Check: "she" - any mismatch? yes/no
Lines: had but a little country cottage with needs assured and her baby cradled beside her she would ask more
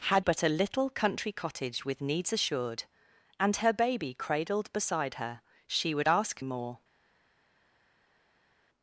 no